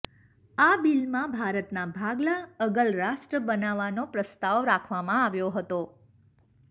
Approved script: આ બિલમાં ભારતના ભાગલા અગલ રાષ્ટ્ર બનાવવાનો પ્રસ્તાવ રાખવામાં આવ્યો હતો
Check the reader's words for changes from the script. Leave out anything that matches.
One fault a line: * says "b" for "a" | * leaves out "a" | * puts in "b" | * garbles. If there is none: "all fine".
all fine